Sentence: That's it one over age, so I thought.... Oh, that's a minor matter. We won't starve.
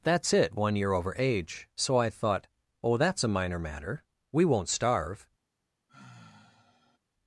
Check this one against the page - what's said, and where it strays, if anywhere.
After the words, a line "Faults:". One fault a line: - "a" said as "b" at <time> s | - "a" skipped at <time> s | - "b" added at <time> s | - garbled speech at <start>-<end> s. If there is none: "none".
That's it one year over age, so I thought.... Oh, that's a minor matter. We won't starve.
Faults:
- "year" added at 0.8 s